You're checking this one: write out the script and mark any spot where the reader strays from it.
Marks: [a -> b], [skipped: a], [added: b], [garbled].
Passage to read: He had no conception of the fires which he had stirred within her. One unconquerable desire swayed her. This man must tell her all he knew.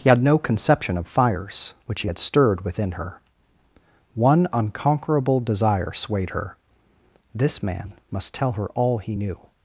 He had no conception of [skipped: the] fires which he had stirred within her. One unconquerable desire swayed her. This man must tell her all he knew.